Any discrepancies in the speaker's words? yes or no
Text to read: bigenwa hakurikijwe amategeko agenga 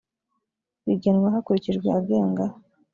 yes